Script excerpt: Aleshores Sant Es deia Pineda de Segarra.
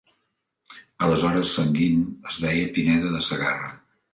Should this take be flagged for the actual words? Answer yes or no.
yes